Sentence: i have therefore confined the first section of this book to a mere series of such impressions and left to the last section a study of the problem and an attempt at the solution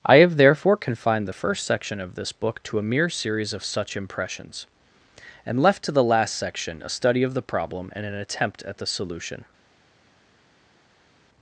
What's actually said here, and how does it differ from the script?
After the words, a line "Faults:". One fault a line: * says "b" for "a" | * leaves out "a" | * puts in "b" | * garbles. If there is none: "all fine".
i have therefore confined the first section of this book to a mere series of such impressions and left to the last section a study of the problem and an attempt at the solution
Faults:
all fine